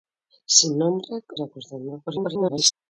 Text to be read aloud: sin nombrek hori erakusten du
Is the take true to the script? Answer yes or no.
no